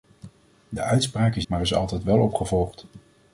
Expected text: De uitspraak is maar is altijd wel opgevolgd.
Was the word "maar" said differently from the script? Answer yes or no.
no